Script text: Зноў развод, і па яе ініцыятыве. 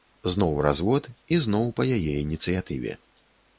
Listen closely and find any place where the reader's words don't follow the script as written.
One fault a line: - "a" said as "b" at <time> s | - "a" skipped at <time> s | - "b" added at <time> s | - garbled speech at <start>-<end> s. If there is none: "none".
- "зноў" added at 1.4 s